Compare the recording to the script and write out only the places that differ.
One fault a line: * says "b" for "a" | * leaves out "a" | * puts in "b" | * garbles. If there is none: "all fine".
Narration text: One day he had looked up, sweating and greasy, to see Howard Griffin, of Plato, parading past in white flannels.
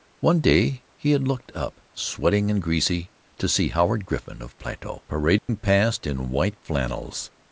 all fine